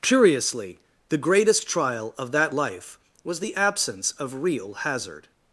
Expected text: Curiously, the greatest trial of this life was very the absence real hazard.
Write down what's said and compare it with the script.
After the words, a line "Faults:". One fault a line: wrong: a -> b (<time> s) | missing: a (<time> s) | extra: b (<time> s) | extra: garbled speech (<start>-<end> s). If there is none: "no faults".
Curiously, the greatest trial of that life was the absence of real hazard.
Faults:
wrong: this -> that (2.3 s)
missing: very (3.4 s)
extra: of (4.1 s)